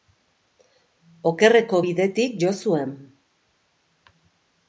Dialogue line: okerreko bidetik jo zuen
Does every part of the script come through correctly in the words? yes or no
yes